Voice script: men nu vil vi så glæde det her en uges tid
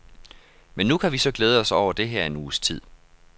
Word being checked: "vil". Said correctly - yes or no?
no